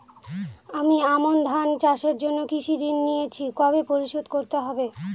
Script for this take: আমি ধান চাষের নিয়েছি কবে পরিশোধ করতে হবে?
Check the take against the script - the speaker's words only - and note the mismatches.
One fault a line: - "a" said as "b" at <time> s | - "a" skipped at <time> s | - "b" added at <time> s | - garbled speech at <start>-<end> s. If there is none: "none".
- "আমন" added at 1.1 s
- "জন্য কৃষি ঋণ" added at 2.2 s